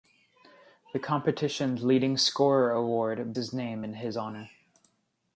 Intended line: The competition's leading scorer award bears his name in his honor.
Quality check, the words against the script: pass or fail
fail